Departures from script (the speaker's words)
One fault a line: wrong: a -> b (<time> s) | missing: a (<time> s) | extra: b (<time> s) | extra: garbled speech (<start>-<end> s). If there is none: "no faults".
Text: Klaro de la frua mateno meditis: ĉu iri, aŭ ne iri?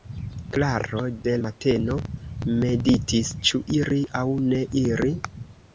missing: la frua (1.4 s)